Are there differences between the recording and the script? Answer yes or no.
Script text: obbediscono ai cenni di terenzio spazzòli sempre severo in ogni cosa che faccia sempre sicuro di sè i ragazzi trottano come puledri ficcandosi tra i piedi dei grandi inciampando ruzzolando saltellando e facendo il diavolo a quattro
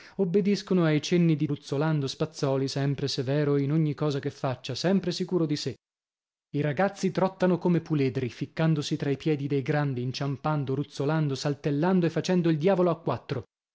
yes